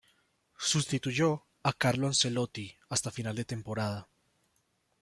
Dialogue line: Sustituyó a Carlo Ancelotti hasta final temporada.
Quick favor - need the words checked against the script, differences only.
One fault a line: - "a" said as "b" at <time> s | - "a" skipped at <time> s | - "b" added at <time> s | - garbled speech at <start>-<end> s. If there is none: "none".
- "de" added at 3.4 s